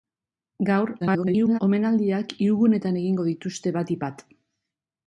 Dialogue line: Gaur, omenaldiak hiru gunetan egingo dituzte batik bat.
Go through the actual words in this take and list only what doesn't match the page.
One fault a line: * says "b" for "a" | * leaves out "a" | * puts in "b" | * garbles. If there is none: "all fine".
* garbles